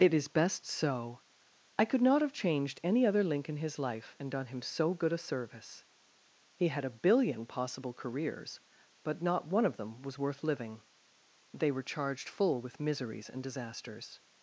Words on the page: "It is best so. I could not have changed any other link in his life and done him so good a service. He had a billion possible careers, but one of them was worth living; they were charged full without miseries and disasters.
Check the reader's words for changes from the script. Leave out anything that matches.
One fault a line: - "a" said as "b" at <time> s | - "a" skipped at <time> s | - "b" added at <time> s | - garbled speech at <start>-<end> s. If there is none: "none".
- "not" added at 9.2 s
- "without" said as "with" at 12.6 s